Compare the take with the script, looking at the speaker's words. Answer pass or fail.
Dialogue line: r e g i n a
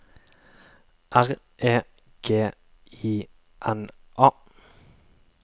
pass